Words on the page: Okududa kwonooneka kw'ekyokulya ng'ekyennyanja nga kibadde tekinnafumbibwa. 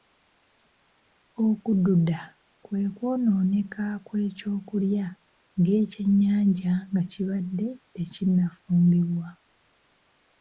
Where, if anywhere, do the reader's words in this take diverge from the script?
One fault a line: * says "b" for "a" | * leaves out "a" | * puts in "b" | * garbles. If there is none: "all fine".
* puts in "kwe"